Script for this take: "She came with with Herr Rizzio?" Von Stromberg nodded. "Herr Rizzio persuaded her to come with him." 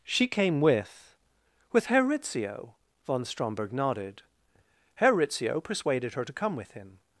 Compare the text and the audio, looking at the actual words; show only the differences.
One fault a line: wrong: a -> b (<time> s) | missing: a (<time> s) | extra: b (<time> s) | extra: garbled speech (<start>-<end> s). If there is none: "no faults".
no faults